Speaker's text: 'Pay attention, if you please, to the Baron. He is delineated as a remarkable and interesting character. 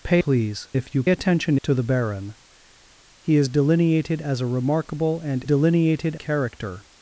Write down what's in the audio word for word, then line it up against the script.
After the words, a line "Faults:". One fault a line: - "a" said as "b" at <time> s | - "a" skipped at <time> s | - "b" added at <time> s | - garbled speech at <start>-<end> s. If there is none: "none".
'Pay please, if you attention, to the Baron. He is delineated as a remarkable and delineated character.
Faults:
- "attention" said as "please" at 0.2 s
- "please" said as "attention" at 1.1 s
- "interesting" said as "delineated" at 5.4 s